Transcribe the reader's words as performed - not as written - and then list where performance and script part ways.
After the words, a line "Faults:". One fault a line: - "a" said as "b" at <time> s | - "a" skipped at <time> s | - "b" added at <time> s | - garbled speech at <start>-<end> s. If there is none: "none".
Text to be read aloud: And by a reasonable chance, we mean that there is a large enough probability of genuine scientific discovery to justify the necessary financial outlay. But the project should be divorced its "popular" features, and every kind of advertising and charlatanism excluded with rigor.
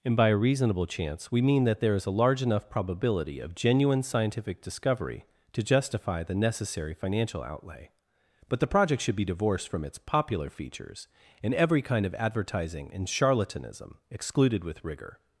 And by a reasonable chance, we mean that there is a large enough probability of genuine scientific discovery to justify the necessary financial outlay. But the project should be divorced from its "popular" features, and every kind of advertising and charlatanism excluded with rigor.
Faults:
- "from" added at 9.7 s